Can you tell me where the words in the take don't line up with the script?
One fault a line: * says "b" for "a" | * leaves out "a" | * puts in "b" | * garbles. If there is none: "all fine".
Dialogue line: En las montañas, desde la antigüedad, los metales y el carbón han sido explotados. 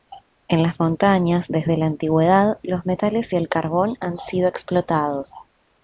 all fine